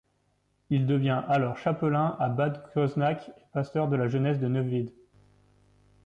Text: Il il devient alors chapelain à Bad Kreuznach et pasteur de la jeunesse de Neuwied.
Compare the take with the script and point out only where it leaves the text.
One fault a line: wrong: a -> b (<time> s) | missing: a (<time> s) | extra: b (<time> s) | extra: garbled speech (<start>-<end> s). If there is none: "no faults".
missing: il (0.9 s)